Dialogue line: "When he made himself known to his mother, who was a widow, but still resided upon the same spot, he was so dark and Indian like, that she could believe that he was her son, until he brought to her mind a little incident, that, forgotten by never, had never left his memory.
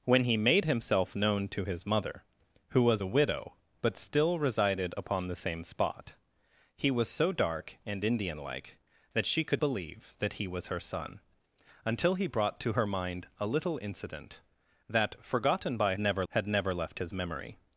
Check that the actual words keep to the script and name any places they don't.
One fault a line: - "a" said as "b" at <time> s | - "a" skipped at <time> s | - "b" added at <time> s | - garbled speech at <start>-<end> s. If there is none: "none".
none